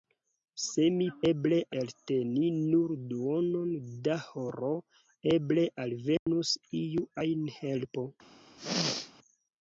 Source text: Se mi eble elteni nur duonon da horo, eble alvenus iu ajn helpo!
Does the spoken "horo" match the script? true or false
true